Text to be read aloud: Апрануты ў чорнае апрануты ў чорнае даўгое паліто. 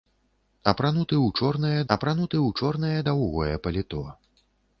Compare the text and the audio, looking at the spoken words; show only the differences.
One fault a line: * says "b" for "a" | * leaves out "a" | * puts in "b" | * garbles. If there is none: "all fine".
all fine